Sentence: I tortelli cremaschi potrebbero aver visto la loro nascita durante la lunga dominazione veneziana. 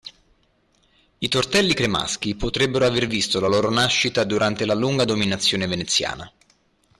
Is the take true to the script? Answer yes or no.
yes